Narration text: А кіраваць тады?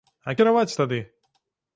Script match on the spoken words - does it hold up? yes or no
yes